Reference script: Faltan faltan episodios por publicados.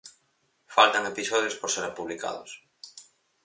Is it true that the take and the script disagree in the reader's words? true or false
true